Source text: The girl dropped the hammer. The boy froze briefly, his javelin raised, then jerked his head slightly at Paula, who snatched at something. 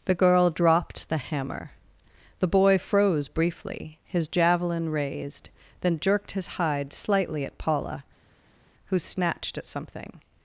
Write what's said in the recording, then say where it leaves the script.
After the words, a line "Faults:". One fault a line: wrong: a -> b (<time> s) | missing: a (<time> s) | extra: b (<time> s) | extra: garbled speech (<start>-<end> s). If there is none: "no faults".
The girl dropped the hammer. The boy froze briefly, his javelin raised, then jerked his hide slightly at Paula, who snatched at something.
Faults:
wrong: head -> hide (6.5 s)